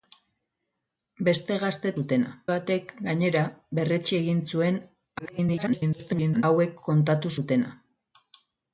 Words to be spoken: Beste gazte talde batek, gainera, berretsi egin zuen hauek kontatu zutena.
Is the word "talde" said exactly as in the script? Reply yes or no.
no